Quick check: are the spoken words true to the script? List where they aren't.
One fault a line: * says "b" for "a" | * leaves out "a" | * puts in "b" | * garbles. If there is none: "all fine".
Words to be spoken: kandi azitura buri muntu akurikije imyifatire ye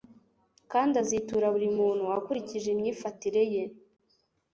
all fine